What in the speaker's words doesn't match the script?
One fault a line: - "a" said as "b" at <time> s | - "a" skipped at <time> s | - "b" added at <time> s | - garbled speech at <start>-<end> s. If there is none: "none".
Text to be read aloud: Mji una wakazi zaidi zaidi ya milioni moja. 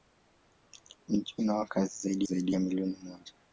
none